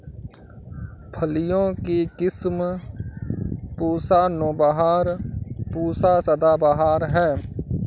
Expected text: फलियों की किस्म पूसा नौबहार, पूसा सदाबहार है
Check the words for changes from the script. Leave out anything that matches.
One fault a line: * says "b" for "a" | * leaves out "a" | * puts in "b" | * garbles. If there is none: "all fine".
all fine